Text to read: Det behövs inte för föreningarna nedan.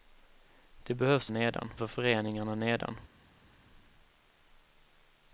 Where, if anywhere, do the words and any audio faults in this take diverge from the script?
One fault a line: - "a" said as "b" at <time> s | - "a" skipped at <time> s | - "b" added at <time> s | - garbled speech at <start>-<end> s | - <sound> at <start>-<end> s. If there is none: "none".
- "inte" said as "nedan" at 1.3 s